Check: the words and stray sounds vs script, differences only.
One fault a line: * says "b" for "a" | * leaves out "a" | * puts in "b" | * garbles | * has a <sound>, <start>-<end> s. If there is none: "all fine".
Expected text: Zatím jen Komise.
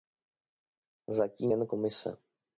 all fine